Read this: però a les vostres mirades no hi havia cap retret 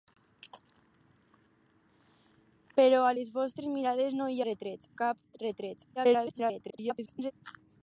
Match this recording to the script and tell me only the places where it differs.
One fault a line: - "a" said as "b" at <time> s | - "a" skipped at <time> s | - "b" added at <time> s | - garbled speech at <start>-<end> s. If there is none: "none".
- "havia" said as "retret" at 4.5 s
- garbled speech at 6.0-7.3 s